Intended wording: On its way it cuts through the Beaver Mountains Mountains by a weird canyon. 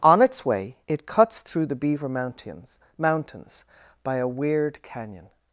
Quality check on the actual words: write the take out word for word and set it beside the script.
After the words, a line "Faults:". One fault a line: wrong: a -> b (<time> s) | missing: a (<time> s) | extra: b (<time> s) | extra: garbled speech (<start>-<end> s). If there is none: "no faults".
On its way it cuts through the Beaver Mountains Mountains by a weird canyon.
Faults:
no faults